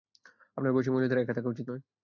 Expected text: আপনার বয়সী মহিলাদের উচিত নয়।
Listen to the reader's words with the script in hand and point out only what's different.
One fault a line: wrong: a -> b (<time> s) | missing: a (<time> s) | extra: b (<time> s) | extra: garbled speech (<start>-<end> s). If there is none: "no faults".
extra: একা থাকা (1.2 s)